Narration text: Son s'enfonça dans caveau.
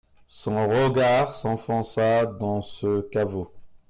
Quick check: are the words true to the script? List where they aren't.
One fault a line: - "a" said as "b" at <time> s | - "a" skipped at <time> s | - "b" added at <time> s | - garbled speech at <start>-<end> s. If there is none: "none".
- "regard" added at 0.7 s
- "ce" added at 2.6 s